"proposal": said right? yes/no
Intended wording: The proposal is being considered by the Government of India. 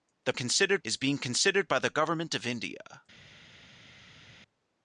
no